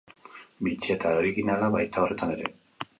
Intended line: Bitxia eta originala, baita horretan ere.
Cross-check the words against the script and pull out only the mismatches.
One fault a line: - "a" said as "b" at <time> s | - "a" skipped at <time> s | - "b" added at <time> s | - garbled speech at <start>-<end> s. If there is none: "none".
none